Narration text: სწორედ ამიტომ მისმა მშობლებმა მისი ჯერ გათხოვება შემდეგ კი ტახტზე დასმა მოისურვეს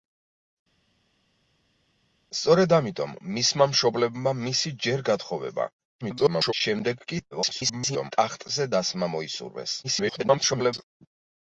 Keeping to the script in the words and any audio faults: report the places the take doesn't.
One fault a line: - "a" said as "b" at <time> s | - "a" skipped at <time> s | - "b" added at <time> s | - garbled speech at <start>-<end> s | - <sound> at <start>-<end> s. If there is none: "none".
- garbled speech at 6.0-6.5 s
- garbled speech at 7.3-8.1 s
- garbled speech at 9.8-10.8 s